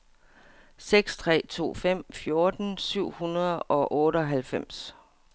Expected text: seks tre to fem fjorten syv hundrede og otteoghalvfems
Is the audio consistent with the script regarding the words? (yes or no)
yes